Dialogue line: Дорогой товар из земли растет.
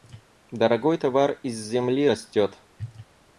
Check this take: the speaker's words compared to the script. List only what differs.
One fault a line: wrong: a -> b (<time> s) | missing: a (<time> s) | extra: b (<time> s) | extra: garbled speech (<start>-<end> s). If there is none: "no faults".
no faults